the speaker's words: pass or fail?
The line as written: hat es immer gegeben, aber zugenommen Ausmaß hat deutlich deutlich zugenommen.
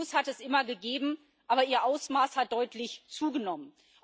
fail